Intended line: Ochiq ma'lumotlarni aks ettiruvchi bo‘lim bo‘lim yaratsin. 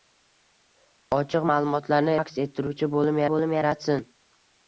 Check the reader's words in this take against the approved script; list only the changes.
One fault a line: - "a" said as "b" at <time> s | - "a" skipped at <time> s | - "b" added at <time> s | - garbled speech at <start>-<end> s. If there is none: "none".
none